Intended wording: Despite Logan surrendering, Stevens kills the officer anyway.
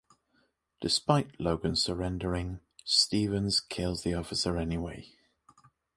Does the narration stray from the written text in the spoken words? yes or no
no